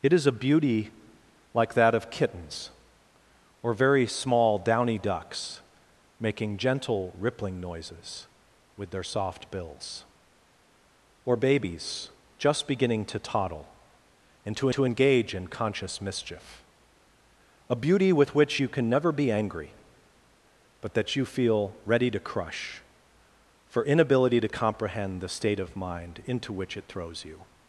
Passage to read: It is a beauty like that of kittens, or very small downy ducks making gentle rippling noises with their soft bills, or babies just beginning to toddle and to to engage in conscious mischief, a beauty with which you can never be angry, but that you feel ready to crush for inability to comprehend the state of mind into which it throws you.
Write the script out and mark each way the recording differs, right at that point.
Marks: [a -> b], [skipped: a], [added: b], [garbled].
It is a beauty like that of kittens, or very small downy ducks making gentle rippling noises with their soft bills, or babies just beginning to toddle and to to engage in conscious mischief, a beauty with which you can never be angry, but that you feel ready to crush for inability to comprehend the state of mind into which it throws you.